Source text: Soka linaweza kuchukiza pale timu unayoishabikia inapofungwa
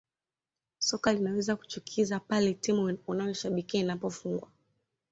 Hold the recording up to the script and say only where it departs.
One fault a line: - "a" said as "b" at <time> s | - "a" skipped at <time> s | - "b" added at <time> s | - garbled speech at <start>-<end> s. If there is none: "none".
none